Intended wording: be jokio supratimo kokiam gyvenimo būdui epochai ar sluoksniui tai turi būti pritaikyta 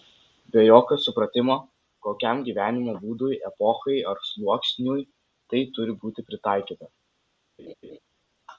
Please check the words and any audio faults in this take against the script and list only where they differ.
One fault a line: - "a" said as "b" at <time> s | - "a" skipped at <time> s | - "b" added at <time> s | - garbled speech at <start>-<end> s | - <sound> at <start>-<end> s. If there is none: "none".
- laugh at 7.6-8.0 s